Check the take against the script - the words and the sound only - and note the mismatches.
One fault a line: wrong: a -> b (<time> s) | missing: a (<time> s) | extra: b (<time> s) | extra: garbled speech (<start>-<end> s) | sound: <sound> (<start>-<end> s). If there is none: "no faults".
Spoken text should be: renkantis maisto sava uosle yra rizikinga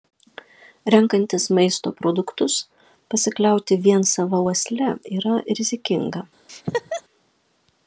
extra: produktus pasikliauti vien (2.0 s)
sound: laugh (6.5-7.0 s)